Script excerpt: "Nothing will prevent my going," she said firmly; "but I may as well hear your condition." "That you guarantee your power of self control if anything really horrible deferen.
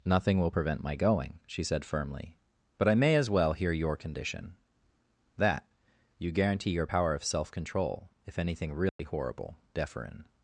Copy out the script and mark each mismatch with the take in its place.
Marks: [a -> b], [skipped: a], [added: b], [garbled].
"Nothing will prevent my going," she said firmly; "but I may as well hear your condition." "That you guarantee your power of self control if anything really horrible deferen.